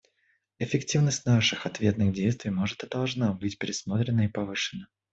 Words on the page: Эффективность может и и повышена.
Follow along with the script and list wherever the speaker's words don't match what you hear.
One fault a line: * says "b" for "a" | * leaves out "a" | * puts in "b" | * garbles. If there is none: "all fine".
* puts in "наших ответных действий"
* puts in "должна быть пересмотрена"